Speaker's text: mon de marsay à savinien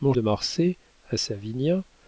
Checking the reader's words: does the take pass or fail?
pass